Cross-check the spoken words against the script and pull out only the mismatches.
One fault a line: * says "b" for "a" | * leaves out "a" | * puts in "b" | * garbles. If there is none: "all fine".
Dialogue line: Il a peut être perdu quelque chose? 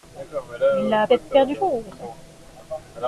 * leaves out "peut"
* leaves out "quelque"